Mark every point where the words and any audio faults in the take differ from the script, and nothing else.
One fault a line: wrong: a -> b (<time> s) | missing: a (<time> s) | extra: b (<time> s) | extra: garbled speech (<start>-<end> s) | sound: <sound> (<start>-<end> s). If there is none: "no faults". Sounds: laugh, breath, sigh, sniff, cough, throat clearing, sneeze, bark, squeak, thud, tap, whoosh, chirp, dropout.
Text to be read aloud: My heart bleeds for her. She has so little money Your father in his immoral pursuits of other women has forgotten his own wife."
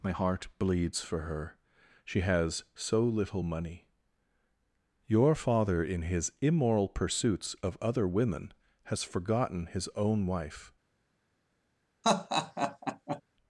sound: laugh (12.0-13.2 s)